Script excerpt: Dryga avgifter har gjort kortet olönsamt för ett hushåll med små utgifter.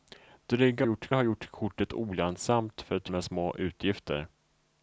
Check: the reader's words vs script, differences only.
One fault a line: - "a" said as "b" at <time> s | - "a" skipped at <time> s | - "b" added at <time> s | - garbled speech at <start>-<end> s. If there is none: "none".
- "avgifter" said as "gjort" at 0.8 s
- "hushåll" skipped at 3.1 s